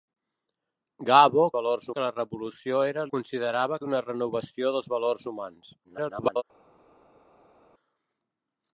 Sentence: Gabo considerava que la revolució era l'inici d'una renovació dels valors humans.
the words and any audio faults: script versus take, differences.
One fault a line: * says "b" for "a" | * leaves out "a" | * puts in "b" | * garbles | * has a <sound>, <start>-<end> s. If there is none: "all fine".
* says "valors" for "considerava"
* says "considerava" for "l'inici"
* garbles